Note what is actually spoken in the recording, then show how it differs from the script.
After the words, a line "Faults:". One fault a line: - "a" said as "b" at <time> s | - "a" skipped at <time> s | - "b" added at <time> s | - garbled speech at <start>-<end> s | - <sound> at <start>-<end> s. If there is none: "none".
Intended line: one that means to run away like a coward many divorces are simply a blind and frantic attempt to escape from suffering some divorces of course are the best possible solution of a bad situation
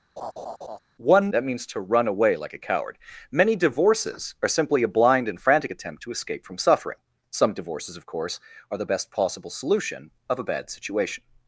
one that means to run away like a coward many divorces are simply a blind and frantic attempt to escape from suffering some divorces of course are the best possible solution of a bad situation
Faults:
- laugh at 0.2-0.8 s